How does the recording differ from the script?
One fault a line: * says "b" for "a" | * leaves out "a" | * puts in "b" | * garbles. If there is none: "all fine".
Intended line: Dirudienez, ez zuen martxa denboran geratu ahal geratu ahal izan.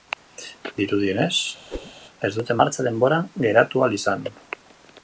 * says "dute" for "zuen"
* leaves out "geratu ahal"